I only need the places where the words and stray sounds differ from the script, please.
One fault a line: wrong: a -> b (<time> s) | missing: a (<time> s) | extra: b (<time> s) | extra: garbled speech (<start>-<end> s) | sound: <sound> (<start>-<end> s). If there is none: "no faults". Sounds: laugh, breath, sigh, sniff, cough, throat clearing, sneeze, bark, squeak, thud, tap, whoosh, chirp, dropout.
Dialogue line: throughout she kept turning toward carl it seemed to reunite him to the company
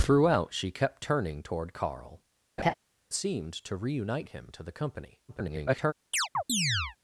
missing: it (2.2 s)
sound: laugh (2.6-2.7 s)
extra: garbled speech (5.3-5.9 s)
sound: chirp (6.1-7.0 s)